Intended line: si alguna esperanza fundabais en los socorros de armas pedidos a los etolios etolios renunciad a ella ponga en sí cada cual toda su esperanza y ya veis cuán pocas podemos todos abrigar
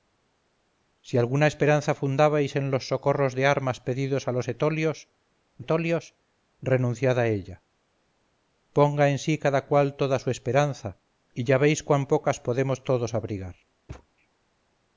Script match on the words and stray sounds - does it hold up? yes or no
no